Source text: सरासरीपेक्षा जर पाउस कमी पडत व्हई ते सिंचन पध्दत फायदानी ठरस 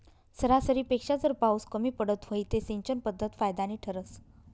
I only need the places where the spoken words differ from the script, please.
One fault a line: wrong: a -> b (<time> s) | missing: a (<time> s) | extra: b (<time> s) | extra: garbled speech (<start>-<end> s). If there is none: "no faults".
no faults